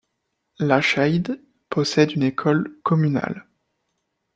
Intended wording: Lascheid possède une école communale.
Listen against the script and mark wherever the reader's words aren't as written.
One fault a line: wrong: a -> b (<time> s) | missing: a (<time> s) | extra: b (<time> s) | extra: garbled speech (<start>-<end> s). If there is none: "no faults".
no faults